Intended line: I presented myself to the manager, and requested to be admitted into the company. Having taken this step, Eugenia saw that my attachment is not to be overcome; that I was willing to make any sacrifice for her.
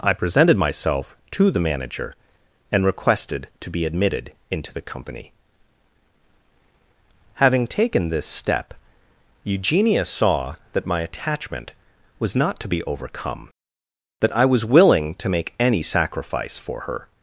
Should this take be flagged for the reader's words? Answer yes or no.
yes